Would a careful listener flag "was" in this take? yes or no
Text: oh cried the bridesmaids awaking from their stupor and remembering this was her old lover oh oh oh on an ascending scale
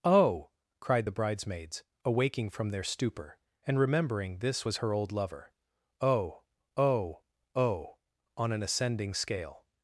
no